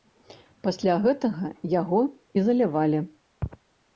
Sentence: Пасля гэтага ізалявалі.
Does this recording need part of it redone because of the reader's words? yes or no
yes